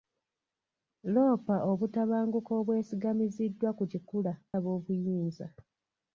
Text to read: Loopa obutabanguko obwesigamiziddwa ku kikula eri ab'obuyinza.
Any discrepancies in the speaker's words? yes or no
yes